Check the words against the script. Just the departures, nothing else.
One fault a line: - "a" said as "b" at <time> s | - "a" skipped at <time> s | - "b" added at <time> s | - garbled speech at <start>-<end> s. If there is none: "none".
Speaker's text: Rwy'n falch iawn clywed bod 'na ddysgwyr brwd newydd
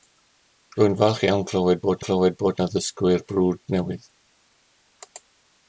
- "clywed bod" added at 2.1 s